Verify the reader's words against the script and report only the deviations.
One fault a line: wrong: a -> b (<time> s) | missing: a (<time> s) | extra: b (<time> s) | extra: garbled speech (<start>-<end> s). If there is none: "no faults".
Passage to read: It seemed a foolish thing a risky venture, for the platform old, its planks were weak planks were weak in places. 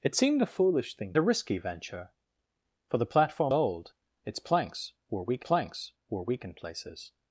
no faults